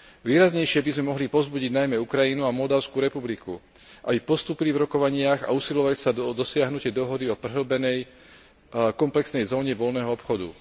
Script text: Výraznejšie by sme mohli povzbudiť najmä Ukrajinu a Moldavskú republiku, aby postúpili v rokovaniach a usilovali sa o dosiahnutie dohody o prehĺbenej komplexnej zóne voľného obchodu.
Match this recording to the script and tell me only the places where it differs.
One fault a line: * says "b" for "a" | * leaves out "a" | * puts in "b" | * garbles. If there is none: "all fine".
all fine